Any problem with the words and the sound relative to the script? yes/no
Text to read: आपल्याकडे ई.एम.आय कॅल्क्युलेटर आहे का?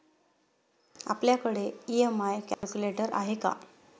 yes